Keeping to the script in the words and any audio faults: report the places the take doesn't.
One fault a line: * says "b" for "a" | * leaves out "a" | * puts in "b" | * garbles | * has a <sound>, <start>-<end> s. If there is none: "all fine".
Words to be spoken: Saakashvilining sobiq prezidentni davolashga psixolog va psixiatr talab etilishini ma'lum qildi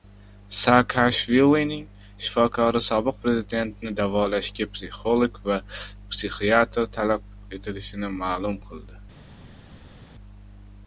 * puts in "shifokori"